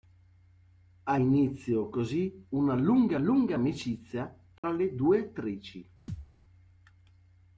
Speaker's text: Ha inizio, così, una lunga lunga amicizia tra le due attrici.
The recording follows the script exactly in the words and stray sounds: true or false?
false